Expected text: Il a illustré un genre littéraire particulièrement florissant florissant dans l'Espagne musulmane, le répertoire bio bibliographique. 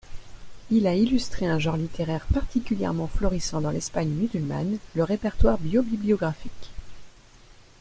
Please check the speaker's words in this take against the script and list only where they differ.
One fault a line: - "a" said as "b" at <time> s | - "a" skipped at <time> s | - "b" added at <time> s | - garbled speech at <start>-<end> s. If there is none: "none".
- "florissant" skipped at 3.6 s